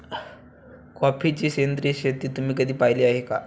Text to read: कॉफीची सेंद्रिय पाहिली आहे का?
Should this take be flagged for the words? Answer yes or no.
yes